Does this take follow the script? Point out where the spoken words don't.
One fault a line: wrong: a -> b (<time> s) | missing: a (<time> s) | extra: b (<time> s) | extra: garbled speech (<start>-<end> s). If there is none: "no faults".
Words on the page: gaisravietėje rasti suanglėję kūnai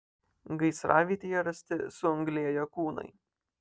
no faults